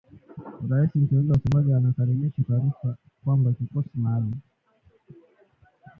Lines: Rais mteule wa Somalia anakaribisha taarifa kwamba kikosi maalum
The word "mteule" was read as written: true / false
true